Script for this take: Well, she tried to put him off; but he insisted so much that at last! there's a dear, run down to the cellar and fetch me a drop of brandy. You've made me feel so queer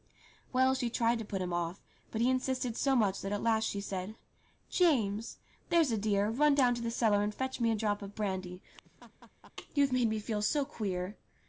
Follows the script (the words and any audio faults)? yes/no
no